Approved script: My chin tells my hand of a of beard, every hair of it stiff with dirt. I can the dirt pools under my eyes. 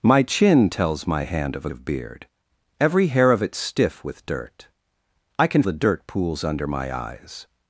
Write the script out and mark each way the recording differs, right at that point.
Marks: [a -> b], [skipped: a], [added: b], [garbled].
My chin tells my hand of a of beard, every hair of it stiff with dirt. I can the dirt pools under my eyes.